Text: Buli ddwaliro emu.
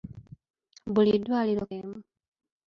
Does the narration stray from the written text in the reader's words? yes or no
no